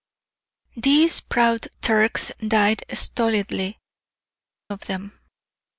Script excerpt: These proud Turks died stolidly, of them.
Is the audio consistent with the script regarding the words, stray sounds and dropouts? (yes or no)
yes